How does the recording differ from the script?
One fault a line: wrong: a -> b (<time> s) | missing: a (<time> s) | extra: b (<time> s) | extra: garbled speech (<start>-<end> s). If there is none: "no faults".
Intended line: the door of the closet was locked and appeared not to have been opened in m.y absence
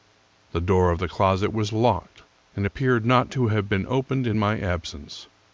no faults